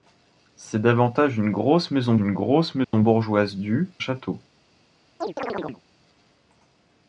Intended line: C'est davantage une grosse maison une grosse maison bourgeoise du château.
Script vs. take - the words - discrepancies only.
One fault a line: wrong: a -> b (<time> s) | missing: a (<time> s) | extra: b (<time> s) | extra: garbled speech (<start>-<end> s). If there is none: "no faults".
no faults